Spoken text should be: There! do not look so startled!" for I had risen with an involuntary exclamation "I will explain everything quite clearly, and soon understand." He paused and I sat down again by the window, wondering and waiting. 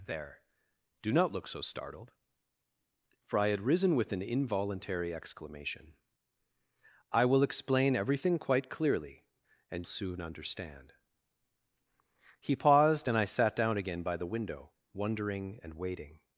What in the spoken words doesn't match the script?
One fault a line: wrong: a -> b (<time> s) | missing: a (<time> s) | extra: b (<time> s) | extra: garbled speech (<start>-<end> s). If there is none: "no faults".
no faults